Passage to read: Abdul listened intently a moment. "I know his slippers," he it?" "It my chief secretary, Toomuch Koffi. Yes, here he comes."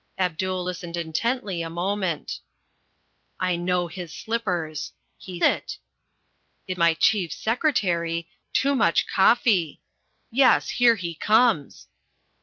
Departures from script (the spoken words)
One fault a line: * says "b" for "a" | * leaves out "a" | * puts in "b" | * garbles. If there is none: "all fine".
all fine